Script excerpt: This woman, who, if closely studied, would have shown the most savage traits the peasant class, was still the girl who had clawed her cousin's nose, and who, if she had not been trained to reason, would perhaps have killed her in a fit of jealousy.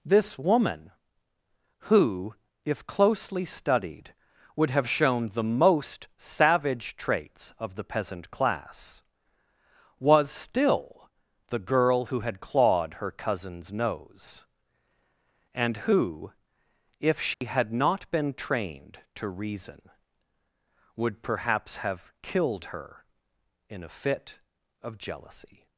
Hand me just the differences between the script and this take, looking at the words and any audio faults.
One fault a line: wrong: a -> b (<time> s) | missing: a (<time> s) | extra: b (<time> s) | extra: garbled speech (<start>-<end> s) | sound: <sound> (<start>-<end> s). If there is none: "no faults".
extra: of (7.6 s)
sound: dropout (17.3-17.4 s)